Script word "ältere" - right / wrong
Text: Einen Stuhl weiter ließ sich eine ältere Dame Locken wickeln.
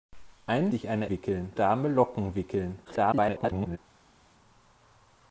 wrong